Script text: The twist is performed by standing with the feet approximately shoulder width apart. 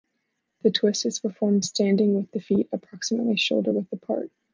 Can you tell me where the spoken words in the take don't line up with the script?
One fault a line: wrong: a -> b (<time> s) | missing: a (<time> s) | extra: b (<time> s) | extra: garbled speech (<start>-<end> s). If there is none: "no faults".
missing: by (1.6 s)